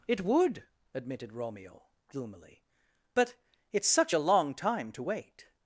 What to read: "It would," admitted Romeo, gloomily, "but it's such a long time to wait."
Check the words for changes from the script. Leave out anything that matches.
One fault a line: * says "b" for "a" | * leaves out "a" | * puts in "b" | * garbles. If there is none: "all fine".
all fine